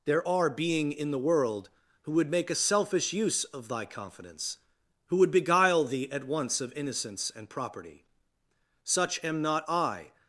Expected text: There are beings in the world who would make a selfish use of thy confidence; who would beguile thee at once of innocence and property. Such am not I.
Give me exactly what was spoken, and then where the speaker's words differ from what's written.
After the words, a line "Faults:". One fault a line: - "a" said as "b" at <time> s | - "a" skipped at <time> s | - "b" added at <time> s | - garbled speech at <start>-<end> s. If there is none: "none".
There are being in the world who would make a selfish use of thy confidence; who would beguile thee at once of innocence and property. Such am not I.
Faults:
- "beings" said as "being" at 0.5 s